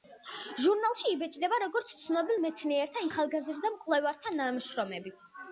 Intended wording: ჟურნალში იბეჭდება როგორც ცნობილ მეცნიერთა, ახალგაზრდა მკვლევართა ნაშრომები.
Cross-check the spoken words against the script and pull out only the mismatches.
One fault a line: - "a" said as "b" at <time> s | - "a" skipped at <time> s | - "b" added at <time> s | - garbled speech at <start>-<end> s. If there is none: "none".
none